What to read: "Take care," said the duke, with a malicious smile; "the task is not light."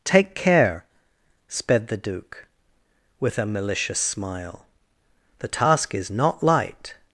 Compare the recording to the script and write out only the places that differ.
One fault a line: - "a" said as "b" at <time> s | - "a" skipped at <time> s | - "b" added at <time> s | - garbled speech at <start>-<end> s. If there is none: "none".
- "said" said as "sped" at 1.5 s